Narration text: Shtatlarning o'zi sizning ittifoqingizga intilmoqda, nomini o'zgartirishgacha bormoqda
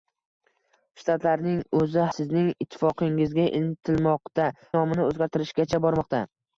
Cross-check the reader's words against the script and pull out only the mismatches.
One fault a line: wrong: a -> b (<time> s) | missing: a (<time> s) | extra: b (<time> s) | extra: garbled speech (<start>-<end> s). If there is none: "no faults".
no faults